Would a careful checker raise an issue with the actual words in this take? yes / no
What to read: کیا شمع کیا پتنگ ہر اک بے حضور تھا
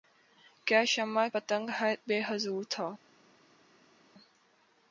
yes